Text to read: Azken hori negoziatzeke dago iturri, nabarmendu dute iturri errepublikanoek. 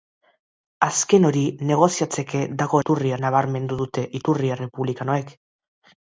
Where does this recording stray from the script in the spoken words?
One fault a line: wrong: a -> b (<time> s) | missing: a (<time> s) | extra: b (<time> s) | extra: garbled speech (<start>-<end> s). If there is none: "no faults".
no faults